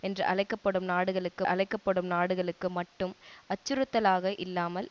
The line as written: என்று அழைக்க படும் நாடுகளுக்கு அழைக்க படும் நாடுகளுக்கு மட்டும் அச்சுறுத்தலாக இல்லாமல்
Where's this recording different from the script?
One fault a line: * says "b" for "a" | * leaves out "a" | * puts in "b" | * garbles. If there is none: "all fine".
all fine